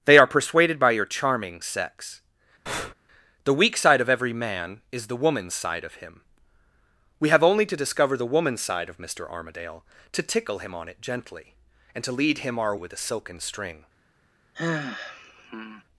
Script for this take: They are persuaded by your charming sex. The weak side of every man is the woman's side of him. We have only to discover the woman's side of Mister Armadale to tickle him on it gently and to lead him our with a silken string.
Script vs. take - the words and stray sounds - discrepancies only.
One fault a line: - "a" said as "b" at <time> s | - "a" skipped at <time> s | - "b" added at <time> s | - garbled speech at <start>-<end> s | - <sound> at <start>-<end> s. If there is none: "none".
- breath at 2.7-2.9 s
- sigh at 14.5-15.8 s